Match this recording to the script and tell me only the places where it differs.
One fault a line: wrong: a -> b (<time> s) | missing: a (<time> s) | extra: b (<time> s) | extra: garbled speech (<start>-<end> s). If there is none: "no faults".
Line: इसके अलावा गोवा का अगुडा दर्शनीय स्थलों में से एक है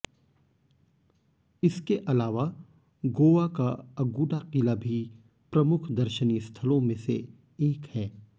extra: किला भी प्रमुख (4.5 s)